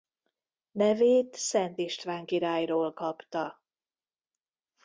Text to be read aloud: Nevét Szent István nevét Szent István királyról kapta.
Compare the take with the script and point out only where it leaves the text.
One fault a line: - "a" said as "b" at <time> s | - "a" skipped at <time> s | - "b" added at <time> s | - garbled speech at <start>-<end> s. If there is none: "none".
- "nevét Szent István" skipped at 2.3 s